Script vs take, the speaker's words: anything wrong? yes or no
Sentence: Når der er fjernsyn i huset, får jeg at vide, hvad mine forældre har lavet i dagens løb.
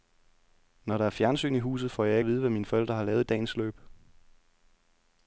no